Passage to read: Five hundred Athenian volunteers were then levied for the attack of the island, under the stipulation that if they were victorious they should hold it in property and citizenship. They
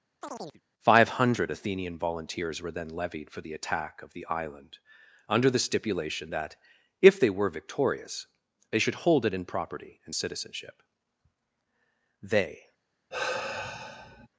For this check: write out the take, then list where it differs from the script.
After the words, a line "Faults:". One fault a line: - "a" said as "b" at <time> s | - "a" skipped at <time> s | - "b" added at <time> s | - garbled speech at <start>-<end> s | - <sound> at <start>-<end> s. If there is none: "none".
Five hundred Athenian volunteers were then levied for the attack of the island, under the stipulation that if they were victorious they should hold it in property and citizenship. They
Faults:
- chirp at 0.2-0.6 s
- sigh at 13.1-14.3 s